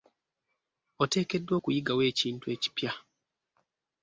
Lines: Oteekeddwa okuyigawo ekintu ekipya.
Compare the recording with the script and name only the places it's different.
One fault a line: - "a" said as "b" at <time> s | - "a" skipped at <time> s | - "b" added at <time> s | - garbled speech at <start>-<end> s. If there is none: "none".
none